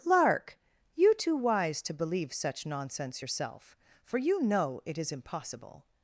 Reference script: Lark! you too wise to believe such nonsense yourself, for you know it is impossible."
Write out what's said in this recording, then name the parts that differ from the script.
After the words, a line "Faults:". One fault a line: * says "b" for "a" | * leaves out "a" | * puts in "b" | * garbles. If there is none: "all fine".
Lark! you too wise to believe such nonsense yourself, for you know it is impossible."
Faults:
all fine